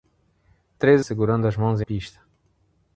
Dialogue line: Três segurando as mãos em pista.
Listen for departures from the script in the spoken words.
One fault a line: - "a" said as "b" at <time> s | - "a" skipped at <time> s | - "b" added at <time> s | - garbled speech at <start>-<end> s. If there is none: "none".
none